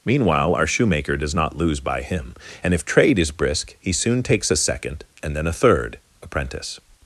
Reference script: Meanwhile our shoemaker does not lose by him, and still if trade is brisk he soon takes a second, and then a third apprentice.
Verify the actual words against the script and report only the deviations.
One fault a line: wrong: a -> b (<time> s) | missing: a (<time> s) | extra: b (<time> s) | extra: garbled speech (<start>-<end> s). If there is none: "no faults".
missing: still (2.7 s)